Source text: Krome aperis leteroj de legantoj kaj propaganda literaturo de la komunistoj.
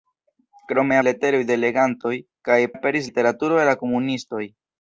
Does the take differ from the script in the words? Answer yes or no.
yes